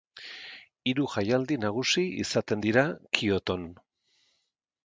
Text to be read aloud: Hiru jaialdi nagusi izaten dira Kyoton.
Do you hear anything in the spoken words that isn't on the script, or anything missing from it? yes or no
no